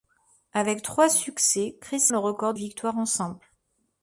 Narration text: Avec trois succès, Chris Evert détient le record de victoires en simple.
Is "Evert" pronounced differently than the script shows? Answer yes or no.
yes